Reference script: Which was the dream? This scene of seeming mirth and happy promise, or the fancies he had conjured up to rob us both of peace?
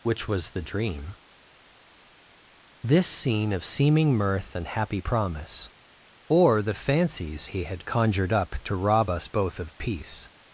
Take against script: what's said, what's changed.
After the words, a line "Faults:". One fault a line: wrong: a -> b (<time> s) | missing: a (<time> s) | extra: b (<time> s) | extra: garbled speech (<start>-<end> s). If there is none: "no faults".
Which was the dream? This scene of seeming mirth and happy promise, or the fancies he had conjured up to rob us both of peace?
Faults:
no faults